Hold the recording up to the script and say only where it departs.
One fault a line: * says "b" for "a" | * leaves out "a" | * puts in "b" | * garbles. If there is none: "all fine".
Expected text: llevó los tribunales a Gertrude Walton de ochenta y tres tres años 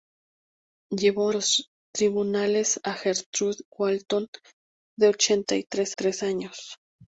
all fine